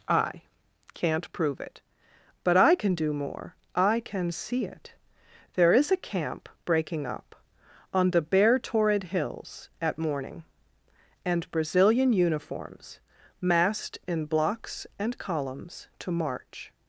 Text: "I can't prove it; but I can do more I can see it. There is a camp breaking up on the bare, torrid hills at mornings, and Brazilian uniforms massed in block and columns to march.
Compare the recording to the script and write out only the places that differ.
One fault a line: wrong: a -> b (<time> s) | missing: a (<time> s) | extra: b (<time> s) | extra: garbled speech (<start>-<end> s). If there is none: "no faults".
wrong: mornings -> morning (10.0 s)
wrong: block -> blocks (14.2 s)